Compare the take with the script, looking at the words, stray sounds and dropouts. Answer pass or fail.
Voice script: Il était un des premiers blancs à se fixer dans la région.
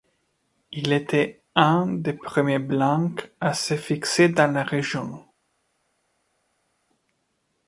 pass